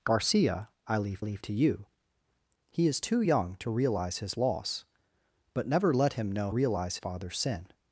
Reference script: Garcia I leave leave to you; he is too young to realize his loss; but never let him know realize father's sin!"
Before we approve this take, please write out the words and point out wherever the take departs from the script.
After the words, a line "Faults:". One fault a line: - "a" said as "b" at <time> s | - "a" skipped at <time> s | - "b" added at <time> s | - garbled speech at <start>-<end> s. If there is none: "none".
Garcia I leave leave to you; he is too young to realize his loss; but never let him know realize father's sin!"
Faults:
none